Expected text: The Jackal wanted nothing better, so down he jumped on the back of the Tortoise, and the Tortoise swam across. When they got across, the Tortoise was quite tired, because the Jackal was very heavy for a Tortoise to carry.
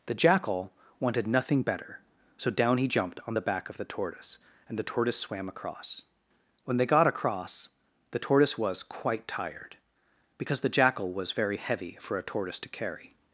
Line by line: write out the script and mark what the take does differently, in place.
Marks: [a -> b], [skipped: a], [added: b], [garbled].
The Jackal wanted nothing better, so down he jumped on the back of the Tortoise, and the Tortoise swam across. When they got across, the Tortoise was quite tired, because the Jackal was very heavy for a Tortoise to carry.